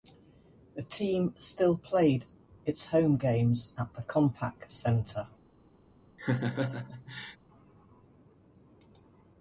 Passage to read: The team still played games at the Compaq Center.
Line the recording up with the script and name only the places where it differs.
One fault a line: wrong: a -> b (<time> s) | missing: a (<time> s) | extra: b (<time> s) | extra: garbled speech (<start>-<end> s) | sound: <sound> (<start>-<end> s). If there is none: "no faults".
extra: its home (2.6 s)
sound: laugh (6.2-7.4 s)